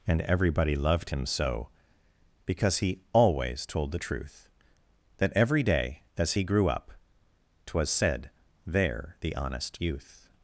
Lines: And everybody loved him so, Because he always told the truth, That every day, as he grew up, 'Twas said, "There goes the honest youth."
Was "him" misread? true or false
false